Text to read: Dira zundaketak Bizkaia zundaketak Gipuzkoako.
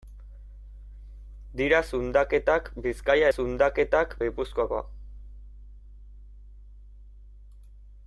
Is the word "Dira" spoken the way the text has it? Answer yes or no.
yes